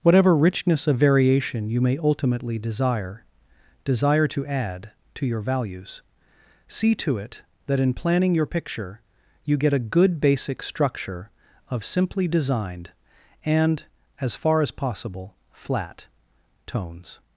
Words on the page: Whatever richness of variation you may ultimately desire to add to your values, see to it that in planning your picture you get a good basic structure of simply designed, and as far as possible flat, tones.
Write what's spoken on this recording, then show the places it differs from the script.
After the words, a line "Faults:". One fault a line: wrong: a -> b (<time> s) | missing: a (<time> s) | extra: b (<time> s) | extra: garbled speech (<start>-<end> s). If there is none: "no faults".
Whatever richness of variation you may ultimately desire desire to add to your values, see to it that in planning your picture you get a good basic structure of simply designed, and as far as possible flat, tones.
Faults:
extra: desire (3.9 s)